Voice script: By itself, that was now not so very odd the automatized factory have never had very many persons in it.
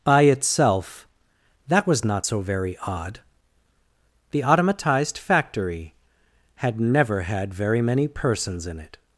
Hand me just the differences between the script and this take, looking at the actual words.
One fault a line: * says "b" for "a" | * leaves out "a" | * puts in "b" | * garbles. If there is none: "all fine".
* leaves out "now"
* says "had" for "have"